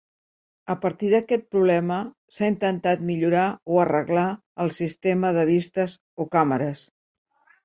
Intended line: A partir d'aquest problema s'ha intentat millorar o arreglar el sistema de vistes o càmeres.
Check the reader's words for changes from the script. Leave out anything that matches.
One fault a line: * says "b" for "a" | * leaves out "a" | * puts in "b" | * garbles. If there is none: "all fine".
all fine